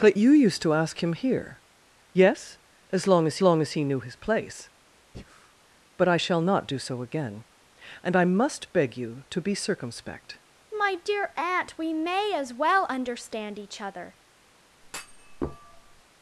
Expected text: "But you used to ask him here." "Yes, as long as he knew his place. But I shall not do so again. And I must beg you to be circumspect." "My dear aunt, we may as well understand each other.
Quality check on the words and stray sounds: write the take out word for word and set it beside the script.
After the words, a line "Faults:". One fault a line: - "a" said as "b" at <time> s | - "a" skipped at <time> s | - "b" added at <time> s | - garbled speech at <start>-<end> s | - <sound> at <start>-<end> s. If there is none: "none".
"But you used to ask him here." "Yes, as long as long as he knew his place. But I shall not do so again. And I must beg you to be circumspect." "My dear aunt, we may as well understand each other.
Faults:
- "long as" added at 3.4 s
- breath at 5.1-5.5 s
- thud at 14.8-16.0 s